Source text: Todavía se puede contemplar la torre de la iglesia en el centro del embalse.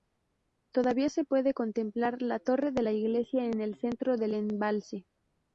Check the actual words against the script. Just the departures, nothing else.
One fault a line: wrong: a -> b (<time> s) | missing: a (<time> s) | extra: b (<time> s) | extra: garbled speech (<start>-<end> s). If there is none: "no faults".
no faults